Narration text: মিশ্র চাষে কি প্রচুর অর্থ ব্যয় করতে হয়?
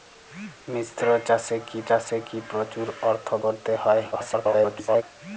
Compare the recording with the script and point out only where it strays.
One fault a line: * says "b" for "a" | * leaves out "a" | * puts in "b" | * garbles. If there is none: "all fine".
* puts in "চাষে কি"
* leaves out "ব্যয়"
* garbles